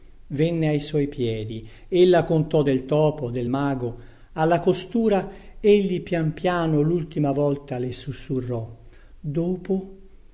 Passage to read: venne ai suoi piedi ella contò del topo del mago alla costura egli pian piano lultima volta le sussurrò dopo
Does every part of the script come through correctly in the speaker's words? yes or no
yes